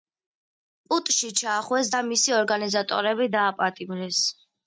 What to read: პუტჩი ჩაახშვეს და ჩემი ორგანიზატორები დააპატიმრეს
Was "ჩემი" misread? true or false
true